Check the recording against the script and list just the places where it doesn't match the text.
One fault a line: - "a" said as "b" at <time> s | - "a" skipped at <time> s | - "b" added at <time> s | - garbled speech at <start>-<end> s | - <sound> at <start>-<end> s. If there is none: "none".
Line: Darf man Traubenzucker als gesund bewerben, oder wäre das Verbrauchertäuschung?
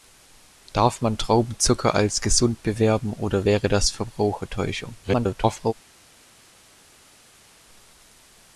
- garbled speech at 5.0-5.7 s